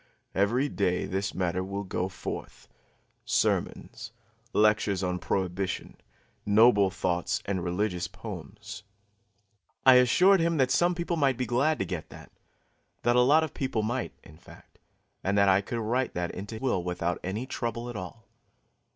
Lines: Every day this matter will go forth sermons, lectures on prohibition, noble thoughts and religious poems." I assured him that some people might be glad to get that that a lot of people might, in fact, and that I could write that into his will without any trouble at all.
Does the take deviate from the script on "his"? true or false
true